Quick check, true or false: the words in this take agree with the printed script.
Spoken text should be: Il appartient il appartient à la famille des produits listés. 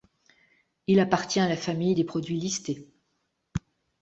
false